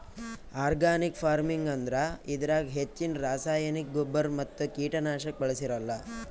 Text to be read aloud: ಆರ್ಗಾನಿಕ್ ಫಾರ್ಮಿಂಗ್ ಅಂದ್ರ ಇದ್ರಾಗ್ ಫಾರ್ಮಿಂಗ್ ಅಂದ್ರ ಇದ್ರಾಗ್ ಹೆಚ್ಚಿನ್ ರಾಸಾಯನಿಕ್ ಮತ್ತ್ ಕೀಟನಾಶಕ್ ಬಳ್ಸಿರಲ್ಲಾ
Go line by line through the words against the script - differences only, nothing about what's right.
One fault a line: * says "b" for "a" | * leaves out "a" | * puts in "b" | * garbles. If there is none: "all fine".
* leaves out "ಫಾರ್ಮಿಂಗ್ ಅಂದ್ರ ಇದ್ರಾಗ್"
* puts in "ಗೊಬ್ಬರ್"